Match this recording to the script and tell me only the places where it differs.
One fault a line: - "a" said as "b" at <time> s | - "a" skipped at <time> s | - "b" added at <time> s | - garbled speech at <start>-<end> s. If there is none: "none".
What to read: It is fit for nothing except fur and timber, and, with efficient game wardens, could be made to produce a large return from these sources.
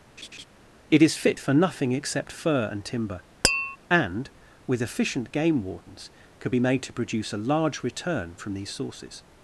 none